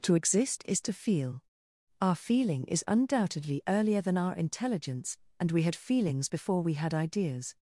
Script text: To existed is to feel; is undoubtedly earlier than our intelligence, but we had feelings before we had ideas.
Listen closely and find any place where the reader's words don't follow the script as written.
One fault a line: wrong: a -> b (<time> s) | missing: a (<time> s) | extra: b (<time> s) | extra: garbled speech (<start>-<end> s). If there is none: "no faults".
wrong: existed -> exist (0.1 s)
extra: our feeling (2.0 s)
wrong: but -> and (5.4 s)